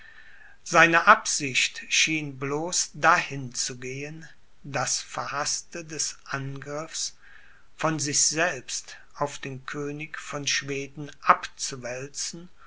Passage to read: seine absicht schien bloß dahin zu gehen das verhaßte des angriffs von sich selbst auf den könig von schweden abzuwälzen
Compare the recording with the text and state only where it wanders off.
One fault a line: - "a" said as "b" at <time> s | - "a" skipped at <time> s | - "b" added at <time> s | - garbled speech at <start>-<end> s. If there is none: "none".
none